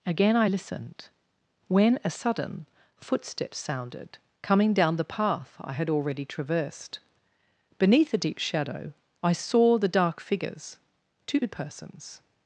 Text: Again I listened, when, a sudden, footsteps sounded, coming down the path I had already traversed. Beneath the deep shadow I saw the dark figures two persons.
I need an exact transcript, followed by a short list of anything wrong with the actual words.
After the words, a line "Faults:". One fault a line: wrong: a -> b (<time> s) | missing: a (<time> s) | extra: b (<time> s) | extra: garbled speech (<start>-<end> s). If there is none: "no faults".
Again I listened, when, a sudden, footsteps sounded, coming down the path I had already traversed. Beneath the deep shadow I saw the dark figures two persons.
Faults:
no faults